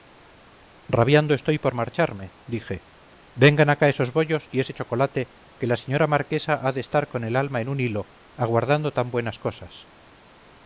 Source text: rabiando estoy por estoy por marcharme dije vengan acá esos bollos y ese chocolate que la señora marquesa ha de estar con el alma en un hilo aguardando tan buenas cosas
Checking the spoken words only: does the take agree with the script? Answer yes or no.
no